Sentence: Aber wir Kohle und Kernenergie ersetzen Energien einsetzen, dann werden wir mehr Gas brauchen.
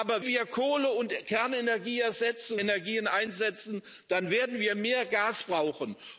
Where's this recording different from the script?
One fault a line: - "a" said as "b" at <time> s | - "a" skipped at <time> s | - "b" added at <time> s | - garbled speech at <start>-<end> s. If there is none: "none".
none